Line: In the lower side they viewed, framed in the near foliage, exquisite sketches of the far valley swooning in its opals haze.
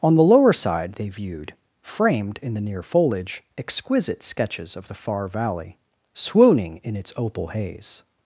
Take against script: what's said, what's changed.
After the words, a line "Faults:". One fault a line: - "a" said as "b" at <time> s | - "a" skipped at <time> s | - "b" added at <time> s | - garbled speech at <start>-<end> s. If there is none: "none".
On the lower side they viewed, framed in the near foliage, exquisite sketches of the far valley swooning in its opal haze.
Faults:
- "In" said as "On" at 0.0 s
- "opals" said as "opal" at 7.2 s